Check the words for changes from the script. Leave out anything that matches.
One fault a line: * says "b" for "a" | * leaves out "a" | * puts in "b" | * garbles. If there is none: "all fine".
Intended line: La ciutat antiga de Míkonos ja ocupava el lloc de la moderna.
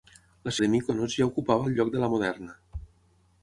* leaves out "ciutat antiga"